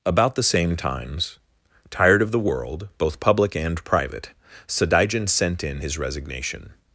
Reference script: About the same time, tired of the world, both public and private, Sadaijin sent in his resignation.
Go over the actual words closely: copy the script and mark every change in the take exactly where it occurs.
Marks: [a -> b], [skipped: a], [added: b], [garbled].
About the same [time, -> times] tired of the world, both public and private, Sadaijin sent in his resignation.